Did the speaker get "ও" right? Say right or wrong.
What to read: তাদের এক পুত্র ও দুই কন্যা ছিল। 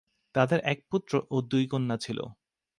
right